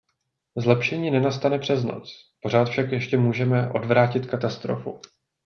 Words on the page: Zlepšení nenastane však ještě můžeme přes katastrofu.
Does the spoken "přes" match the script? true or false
false